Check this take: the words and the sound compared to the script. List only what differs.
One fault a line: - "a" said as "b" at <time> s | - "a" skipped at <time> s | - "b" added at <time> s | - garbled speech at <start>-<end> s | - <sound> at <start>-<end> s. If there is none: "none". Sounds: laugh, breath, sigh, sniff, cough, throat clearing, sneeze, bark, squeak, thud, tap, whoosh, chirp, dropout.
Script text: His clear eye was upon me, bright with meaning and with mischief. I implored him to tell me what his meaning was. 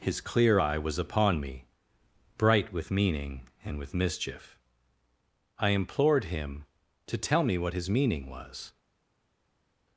none